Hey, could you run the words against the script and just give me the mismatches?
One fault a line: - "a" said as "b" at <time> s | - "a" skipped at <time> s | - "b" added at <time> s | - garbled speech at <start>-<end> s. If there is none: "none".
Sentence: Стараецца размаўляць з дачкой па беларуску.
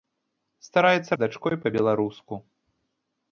- "размаўляць" skipped at 1.2 s